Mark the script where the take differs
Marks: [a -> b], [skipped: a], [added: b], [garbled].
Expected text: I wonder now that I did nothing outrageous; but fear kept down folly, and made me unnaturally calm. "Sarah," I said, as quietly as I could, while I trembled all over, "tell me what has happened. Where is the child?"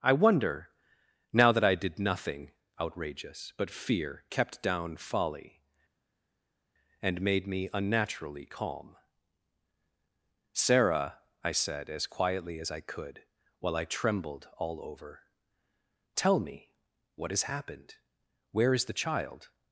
I wonder now that I did nothing outrageous; but fear kept down folly, and made me unnaturally calm. "Sarah," I said, as quietly as I could, while I trembled all over, "tell me what has happened. Where is the child?"